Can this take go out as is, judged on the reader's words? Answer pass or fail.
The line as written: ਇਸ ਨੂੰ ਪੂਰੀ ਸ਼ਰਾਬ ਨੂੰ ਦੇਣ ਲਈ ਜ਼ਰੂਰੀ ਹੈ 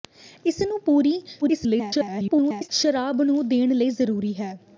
fail